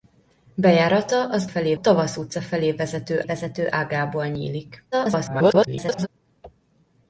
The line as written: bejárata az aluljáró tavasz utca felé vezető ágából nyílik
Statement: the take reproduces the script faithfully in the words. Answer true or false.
false